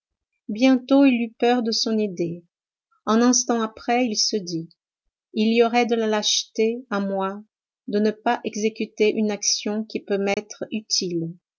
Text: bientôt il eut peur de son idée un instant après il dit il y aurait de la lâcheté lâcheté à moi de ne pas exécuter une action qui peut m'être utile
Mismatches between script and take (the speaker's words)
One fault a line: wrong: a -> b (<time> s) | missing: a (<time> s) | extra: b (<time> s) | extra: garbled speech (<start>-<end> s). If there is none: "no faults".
extra: se (4.1 s)
missing: lâcheté (6.8 s)